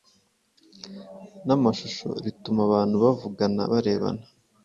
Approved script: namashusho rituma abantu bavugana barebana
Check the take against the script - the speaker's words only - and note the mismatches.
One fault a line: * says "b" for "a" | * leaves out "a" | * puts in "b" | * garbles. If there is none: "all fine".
all fine